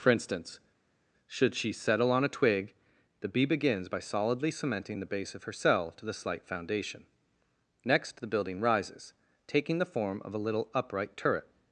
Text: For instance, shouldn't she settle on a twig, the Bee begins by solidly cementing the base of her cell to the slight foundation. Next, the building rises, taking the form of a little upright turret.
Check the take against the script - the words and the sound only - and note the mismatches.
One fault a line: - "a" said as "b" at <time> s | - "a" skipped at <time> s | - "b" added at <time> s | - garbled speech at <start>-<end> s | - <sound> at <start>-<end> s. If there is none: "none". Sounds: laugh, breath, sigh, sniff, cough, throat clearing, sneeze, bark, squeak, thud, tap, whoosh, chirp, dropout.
- "shouldn't" said as "should" at 1.3 s